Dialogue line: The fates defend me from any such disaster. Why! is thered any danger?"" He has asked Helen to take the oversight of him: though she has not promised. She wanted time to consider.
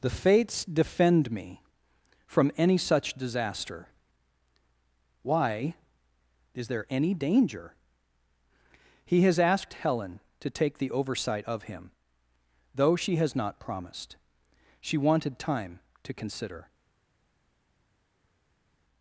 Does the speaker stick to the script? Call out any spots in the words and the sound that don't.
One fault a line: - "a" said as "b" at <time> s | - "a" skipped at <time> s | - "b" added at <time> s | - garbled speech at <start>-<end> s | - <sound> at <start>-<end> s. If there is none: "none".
- "thered" said as "there" at 6.7 s